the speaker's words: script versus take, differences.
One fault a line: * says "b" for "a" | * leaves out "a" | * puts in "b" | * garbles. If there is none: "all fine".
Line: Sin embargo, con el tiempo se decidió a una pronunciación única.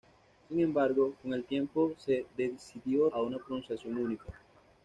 all fine